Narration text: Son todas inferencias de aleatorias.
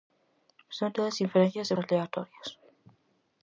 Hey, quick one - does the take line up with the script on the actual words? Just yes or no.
yes